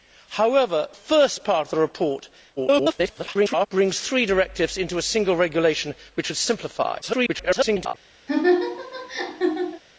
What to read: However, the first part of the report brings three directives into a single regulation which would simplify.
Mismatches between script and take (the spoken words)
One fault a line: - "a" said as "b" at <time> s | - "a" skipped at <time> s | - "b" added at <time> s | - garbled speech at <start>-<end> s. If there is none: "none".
- "the" skipped at 0.9 s
- garbled speech at 2.6-3.7 s
- garbled speech at 7.0-7.9 s